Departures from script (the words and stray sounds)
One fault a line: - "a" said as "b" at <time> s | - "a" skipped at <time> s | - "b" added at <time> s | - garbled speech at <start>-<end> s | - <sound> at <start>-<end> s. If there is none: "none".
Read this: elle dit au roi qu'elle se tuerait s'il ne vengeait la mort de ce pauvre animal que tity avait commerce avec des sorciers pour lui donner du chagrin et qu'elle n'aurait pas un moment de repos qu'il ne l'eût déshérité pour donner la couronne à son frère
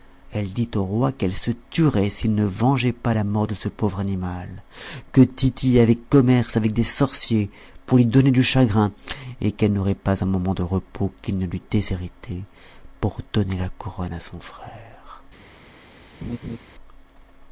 - "pas" added at 2.9 s
- laugh at 16.2-16.6 s